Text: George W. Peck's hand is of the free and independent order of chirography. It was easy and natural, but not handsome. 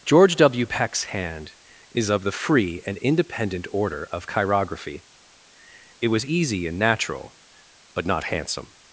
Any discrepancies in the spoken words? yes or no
no